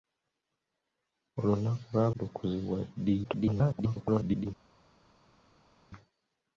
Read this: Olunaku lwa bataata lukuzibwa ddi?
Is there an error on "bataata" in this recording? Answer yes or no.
yes